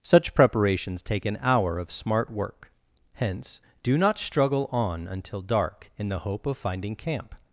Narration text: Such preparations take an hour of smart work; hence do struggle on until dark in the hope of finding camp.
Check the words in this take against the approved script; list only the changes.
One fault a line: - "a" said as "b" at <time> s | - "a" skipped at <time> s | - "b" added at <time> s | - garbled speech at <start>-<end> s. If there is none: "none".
- "not" added at 4.0 s